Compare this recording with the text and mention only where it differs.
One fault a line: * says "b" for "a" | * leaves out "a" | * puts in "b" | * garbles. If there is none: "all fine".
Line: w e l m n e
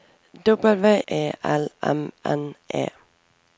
all fine